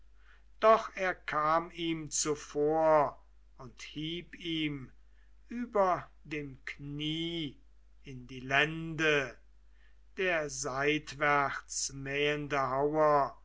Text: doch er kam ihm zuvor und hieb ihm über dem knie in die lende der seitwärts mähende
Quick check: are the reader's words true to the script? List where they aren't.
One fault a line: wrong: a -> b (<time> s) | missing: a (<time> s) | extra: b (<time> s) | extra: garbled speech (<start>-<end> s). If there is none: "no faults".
no faults